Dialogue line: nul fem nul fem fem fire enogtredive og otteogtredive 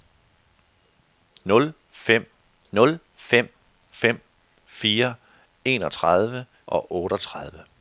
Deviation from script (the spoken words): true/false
false